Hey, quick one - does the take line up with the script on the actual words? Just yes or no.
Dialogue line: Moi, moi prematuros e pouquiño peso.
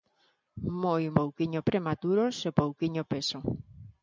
no